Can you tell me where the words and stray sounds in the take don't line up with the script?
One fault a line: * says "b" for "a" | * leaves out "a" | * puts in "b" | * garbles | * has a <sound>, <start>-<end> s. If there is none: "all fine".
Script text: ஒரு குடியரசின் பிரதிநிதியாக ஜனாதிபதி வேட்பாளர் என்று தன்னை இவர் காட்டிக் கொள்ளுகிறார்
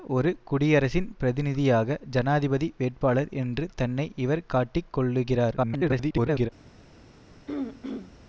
* garbles
* has a throat clearing, 7.5-8.1 s